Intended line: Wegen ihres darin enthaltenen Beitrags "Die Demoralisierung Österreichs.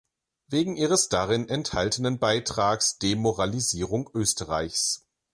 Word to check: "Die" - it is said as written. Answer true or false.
false